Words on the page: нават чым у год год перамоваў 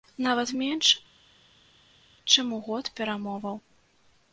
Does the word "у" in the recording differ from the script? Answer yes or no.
no